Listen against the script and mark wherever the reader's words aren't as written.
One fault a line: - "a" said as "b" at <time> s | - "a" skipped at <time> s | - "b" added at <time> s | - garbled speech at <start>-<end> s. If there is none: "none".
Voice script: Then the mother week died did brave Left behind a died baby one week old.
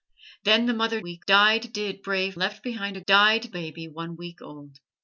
none